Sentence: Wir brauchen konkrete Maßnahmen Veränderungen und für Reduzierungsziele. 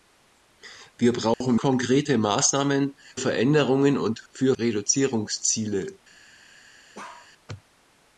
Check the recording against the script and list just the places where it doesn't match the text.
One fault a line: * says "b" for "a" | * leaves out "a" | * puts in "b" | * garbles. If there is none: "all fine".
all fine